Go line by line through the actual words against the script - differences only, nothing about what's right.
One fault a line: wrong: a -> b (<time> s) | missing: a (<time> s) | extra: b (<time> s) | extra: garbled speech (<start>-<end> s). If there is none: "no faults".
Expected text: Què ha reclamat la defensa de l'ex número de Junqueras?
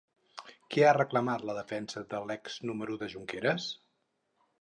no faults